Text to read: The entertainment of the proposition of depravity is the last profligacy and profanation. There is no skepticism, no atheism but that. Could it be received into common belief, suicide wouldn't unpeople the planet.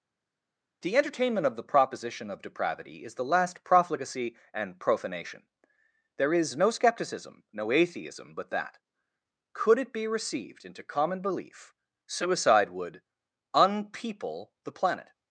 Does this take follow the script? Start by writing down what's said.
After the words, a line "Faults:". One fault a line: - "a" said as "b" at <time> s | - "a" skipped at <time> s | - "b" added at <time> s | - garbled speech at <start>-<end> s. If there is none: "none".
The entertainment of the proposition of depravity is the last profligacy and profanation. There is no skepticism, no atheism but that. Could it be received into common belief, suicide would unpeople the planet.
Faults:
- "wouldn't" said as "would" at 12.7 s